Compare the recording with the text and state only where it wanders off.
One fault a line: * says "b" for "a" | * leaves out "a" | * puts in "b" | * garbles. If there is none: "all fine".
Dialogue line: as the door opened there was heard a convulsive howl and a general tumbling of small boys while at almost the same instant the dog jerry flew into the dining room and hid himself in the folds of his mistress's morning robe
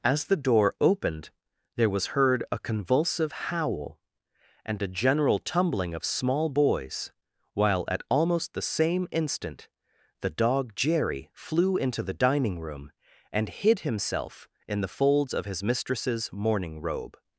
all fine